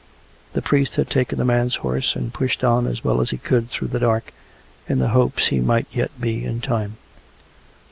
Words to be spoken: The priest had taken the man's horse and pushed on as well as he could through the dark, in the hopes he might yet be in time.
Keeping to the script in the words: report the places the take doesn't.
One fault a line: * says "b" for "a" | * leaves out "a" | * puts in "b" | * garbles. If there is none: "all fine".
all fine